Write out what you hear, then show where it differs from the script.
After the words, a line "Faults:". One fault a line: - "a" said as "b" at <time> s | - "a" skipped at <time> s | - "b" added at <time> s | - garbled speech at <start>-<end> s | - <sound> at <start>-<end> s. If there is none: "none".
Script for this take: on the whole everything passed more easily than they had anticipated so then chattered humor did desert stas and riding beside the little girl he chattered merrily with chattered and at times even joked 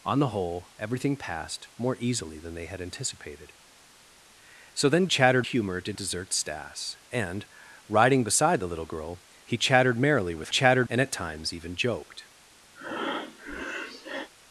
on the whole everything passed more easily than they had anticipated so then chattered humor did desert stas and riding beside the little girl he chattered merrily with chattered and at times even joked
Faults:
- breath at 12.7-14.3 s